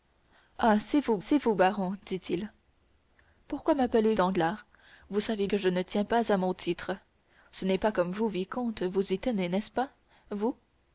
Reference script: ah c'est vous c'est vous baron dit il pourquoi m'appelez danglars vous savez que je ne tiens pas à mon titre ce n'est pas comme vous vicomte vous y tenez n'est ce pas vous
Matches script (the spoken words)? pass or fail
pass